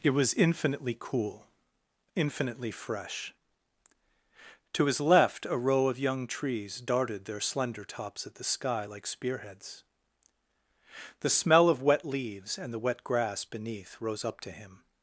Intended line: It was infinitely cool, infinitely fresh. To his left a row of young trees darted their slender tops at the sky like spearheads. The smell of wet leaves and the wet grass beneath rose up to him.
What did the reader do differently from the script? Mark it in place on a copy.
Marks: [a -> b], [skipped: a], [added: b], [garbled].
It was infinitely cool, infinitely fresh. To his left a row of young trees darted their slender tops at the sky like spearheads. The smell of wet leaves and the wet grass beneath rose up to him.